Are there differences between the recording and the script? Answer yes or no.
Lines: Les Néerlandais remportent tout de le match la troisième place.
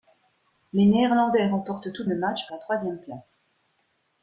no